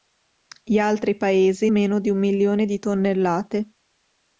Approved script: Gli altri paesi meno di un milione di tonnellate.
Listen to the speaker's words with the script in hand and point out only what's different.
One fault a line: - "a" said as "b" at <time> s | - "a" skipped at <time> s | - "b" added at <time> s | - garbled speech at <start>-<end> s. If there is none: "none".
none